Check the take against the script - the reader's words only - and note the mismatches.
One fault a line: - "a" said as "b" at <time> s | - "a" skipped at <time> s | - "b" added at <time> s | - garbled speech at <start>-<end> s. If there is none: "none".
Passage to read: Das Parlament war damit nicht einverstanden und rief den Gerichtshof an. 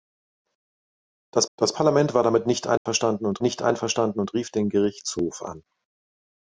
- "das" added at 1.6 s
- "nicht einverstanden und" added at 3.4 s